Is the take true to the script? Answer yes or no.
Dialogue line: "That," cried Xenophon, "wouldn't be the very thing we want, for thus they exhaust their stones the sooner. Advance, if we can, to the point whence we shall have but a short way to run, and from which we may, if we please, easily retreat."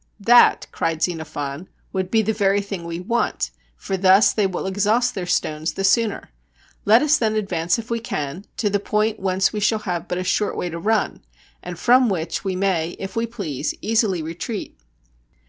no